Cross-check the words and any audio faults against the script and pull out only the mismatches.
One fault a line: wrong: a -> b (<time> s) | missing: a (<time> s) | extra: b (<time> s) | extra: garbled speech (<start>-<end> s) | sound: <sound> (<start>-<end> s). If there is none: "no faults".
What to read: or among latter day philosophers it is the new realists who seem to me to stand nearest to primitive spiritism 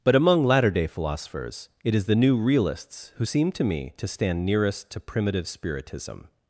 wrong: or -> but (0.0 s)